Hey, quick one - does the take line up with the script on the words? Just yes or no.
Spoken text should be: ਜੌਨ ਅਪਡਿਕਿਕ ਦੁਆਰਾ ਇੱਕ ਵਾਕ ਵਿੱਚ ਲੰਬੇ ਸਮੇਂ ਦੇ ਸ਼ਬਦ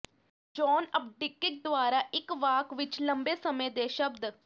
yes